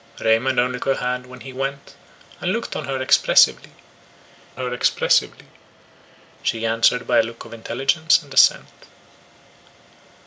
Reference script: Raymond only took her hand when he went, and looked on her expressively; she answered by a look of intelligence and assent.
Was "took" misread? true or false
true